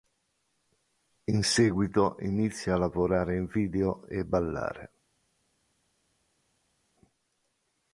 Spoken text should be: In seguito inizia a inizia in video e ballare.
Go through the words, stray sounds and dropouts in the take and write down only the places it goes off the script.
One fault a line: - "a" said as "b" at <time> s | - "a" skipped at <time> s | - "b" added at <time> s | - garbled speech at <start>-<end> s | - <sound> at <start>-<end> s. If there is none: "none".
- "inizia" said as "lavorare" at 2.8 s